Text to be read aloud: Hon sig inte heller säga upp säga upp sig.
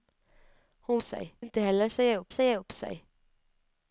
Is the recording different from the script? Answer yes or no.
no